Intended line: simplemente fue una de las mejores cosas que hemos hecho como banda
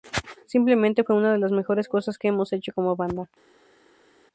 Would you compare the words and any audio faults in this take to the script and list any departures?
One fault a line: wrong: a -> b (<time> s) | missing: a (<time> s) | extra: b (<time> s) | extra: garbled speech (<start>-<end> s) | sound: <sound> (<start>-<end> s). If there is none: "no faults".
no faults